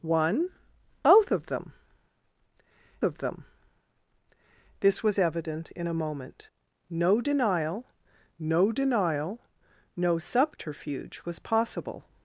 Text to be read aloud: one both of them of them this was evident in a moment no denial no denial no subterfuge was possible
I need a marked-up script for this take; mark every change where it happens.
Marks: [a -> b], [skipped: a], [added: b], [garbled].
one both of them of them this was evident in a moment no denial no denial no subterfuge was possible